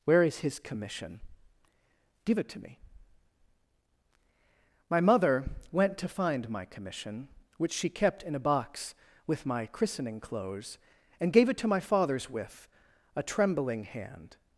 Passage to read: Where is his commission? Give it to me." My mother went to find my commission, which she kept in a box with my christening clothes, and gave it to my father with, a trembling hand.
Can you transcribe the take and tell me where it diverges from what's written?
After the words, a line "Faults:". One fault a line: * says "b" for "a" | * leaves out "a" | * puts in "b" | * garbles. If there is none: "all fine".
Where is his commission? Give it to me." My mother went to find my commission, which she kept in a box with my christening clothes, and gave it to my fathers with, a trembling hand.
Faults:
* says "fathers" for "father"